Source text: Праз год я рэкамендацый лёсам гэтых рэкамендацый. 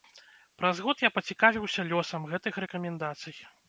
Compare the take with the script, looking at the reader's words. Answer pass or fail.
fail